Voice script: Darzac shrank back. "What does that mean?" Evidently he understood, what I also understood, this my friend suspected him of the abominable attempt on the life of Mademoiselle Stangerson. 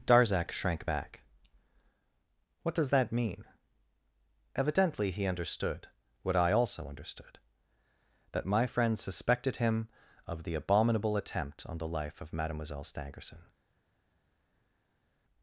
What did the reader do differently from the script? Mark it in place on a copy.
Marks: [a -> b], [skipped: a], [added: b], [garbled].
Darzac shrank back. "What does that mean?" Evidently he understood, what I also understood, [this -> that] my friend suspected him of the abominable attempt on the life of Mademoiselle Stangerson.